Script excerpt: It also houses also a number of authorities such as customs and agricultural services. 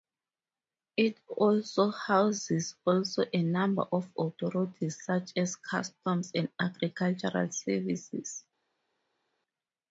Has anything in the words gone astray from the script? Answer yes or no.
no